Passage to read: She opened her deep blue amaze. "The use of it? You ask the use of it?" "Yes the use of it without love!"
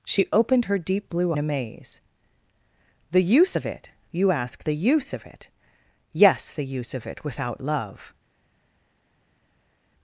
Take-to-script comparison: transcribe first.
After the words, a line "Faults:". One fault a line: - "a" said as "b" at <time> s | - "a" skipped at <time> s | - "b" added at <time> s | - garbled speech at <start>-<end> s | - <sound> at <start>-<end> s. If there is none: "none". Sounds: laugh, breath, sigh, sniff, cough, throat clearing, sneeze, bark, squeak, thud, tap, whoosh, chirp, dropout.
She opened her deep blue amaze. "The use of it? You ask the use of it?" "Yes the use of it without love!"
Faults:
none